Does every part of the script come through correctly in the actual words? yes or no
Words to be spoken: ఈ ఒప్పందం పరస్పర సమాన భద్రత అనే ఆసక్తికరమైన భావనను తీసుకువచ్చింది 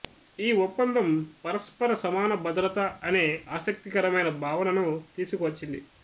yes